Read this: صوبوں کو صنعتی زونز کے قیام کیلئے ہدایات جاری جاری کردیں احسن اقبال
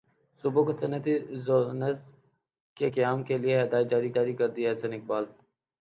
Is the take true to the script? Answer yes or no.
yes